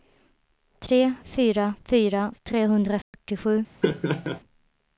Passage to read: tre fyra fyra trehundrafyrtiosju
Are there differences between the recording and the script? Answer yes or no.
no